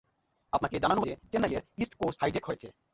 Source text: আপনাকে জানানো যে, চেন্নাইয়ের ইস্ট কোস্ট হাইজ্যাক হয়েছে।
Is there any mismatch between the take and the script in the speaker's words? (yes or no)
no